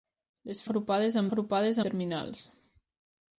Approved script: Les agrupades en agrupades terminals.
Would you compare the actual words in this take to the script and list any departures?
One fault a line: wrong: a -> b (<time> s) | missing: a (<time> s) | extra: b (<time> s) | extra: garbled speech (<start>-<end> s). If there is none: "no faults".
no faults